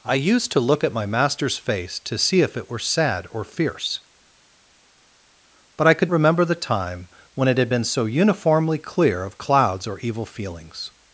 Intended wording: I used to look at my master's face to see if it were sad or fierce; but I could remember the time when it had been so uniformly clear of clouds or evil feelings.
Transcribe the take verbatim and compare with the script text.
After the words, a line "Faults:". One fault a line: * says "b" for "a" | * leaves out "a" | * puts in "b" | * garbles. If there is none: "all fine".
I used to look at my master's face to see if it were sad or fierce; but I could remember the time when it had been so uniformly clear of clouds or evil feelings.
Faults:
all fine